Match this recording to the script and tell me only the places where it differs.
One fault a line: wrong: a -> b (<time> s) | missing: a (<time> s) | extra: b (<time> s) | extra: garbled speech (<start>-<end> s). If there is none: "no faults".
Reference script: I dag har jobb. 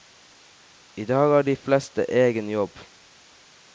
extra: de fleste egen (1.4 s)